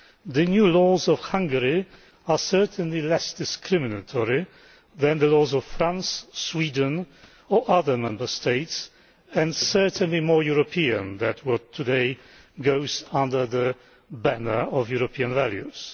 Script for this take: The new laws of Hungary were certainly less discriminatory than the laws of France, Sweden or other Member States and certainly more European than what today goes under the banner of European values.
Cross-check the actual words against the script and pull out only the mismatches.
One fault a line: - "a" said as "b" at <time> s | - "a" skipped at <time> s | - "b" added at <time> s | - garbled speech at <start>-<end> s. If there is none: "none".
- "were" said as "are" at 2.3 s